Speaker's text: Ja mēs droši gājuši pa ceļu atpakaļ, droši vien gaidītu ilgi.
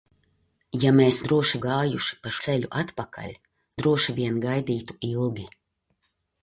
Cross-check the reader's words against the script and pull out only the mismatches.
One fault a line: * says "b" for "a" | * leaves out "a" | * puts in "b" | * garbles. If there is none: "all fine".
all fine